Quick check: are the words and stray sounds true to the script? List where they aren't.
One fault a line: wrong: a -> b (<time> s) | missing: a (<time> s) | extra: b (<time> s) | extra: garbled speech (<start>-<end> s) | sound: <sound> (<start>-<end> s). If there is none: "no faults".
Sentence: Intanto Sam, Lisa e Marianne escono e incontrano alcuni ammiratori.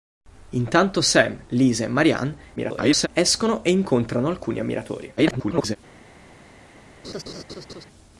extra: garbled speech (2.6-3.1 s)
extra: garbled speech (5.2-5.8 s)
sound: laugh (7.0-7.8 s)